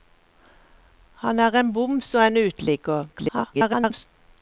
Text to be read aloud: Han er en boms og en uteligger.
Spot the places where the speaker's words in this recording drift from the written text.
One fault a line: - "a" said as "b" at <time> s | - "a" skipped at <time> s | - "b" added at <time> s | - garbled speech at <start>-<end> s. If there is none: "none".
- garbled speech at 3.1-4.1 s